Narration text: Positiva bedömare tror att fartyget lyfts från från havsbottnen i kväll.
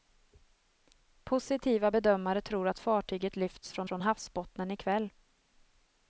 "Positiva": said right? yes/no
yes